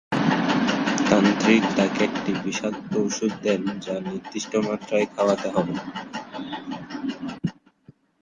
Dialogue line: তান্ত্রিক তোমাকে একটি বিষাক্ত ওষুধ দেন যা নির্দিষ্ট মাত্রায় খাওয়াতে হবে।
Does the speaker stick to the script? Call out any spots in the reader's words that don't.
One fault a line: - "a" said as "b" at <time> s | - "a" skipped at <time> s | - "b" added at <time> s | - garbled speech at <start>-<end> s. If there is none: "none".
- "তোমাকে" said as "তাকে" at 1.8 s